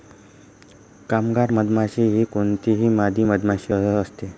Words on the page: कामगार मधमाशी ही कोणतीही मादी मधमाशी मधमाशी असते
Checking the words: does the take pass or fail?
fail